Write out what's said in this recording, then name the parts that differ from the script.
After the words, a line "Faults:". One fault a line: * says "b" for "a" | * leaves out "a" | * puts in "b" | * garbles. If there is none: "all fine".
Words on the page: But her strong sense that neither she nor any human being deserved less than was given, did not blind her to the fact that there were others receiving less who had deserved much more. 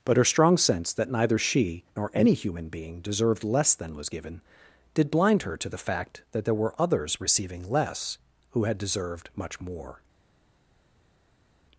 But her strong sense that neither she nor any human being deserved less than was given, did blind her to the fact that there were others receiving less who had deserved much more.
Faults:
* leaves out "not"